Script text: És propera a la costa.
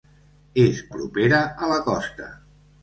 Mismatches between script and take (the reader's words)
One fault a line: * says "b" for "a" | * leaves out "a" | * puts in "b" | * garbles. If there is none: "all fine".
all fine